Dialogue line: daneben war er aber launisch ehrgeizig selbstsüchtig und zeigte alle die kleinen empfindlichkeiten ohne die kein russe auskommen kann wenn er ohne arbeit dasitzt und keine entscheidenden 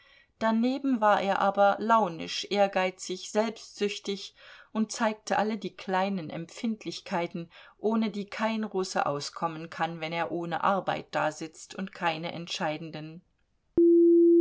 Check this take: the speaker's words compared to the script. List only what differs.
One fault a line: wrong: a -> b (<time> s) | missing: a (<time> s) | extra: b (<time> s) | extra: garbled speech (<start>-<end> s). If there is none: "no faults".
no faults